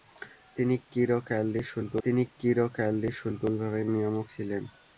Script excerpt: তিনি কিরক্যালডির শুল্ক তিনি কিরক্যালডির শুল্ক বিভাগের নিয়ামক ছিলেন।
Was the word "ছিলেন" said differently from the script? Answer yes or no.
no